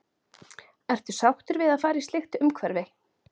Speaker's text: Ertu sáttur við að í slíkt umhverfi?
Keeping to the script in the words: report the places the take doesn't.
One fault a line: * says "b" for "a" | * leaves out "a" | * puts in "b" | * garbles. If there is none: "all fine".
* puts in "fara"